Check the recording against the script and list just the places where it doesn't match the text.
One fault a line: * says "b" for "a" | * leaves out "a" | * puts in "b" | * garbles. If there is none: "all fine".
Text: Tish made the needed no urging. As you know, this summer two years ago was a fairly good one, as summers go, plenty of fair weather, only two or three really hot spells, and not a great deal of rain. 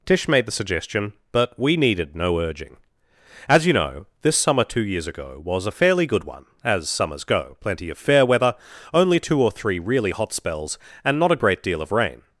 * puts in "suggestion but we"